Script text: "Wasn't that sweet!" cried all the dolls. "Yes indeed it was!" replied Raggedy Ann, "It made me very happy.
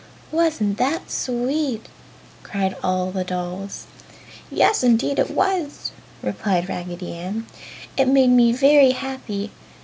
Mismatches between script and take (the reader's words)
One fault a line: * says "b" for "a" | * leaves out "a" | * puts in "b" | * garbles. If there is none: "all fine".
all fine